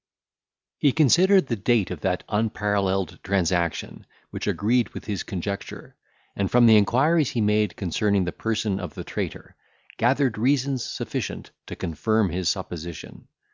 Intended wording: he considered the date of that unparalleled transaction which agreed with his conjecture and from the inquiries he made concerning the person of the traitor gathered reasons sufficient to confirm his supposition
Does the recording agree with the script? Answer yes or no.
yes